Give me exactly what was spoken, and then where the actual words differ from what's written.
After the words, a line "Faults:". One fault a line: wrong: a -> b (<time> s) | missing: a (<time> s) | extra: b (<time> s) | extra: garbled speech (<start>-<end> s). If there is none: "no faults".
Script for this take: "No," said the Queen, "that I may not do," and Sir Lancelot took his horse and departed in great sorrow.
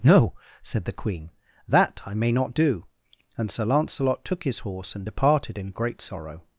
"No," said the Queen, "that I may not do," and Sir Lancelot took his horse and departed in great sorrow.
Faults:
no faults